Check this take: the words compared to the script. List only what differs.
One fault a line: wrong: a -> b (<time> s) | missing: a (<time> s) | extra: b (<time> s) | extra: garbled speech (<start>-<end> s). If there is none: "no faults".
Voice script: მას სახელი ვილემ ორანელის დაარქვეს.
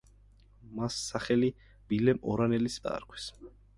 no faults